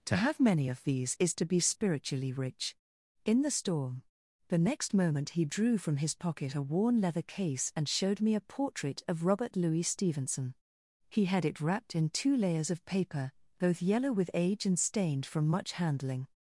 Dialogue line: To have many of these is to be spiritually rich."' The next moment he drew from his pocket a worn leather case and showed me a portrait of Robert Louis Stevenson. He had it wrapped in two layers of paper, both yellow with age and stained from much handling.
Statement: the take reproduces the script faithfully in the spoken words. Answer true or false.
false